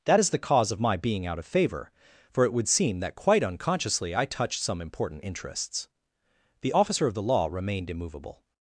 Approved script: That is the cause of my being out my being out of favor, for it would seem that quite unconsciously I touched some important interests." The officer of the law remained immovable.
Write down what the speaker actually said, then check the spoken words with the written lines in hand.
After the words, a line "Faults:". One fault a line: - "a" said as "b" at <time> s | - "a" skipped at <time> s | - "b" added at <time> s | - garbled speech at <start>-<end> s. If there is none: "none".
That is the cause of my being out of favor, for it would seem that quite unconsciously I touched some important interests." The officer of the law remained immovable.
Faults:
- "my being out" skipped at 1.4 s